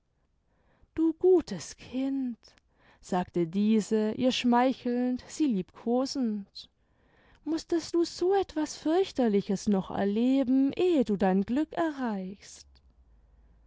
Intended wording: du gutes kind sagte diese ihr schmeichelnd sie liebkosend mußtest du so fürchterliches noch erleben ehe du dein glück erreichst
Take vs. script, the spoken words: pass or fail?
fail